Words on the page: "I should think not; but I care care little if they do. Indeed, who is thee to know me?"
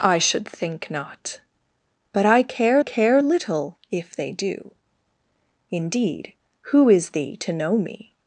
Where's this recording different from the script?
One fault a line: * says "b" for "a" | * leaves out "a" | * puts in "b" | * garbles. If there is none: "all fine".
all fine